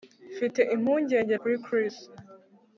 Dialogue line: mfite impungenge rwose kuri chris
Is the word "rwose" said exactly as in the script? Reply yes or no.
no